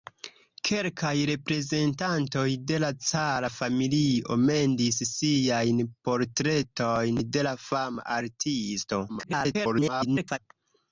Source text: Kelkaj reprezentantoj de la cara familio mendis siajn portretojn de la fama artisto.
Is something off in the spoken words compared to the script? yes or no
yes